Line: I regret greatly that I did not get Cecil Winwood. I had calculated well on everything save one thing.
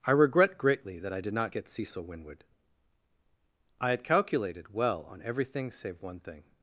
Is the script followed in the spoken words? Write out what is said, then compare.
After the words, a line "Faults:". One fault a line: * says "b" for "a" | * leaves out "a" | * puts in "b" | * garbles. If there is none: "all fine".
I regret greatly that I did not get Cecil Winwood. I had calculated well on everything save one thing.
Faults:
all fine